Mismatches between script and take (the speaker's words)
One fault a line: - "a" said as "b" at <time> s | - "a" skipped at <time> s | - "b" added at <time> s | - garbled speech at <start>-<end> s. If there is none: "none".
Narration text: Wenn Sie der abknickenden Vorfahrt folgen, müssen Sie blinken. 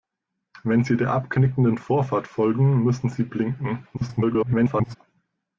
- garbled speech at 3.9-5.0 s